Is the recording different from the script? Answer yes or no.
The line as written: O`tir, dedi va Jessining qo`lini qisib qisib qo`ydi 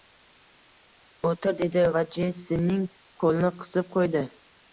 yes